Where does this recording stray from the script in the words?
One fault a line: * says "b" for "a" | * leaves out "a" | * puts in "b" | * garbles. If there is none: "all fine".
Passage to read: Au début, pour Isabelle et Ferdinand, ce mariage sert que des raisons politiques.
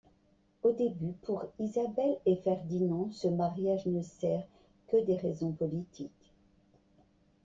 * puts in "ne"